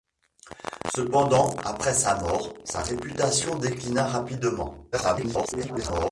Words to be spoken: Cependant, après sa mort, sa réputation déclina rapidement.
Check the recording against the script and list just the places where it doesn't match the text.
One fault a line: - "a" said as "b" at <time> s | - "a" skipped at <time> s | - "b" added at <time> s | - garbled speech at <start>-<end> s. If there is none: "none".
- garbled speech at 4.9-6.1 s